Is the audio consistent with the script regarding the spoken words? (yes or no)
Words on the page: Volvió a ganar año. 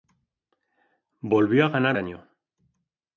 yes